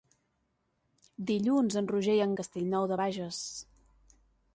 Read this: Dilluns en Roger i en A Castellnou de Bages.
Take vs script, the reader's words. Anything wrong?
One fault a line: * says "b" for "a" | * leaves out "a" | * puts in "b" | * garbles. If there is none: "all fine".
all fine